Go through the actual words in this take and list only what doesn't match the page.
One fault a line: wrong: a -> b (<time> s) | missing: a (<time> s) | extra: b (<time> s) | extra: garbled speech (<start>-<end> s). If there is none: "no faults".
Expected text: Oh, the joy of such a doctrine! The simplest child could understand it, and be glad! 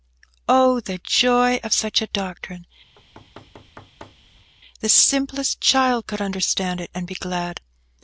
no faults